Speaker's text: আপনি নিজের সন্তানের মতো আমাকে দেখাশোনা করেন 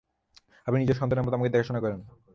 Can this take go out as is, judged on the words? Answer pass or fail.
pass